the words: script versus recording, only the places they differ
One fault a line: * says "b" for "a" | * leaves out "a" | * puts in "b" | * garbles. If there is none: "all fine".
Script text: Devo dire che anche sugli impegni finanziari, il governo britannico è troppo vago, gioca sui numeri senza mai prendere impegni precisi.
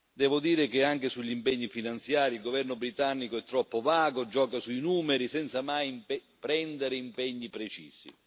all fine